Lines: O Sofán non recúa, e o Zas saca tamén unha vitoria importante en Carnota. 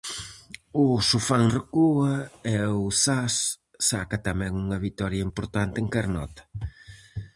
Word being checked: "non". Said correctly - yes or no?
no